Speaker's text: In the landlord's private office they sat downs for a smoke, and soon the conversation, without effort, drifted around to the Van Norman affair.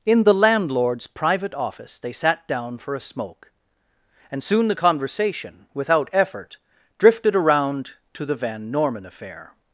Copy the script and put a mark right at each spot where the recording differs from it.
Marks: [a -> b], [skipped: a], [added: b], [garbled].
In the landlord's private office they sat [downs -> down] for a smoke, and soon the conversation, without effort, drifted around to the Van Norman affair.